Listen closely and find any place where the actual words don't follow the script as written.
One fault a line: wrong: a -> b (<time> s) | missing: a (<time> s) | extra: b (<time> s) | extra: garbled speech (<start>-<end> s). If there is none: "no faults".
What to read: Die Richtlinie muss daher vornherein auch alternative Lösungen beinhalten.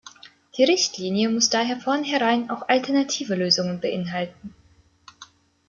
no faults